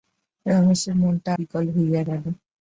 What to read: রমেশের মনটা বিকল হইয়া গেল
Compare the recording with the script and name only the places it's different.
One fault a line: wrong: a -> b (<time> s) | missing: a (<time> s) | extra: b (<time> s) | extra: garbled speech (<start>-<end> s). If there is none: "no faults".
no faults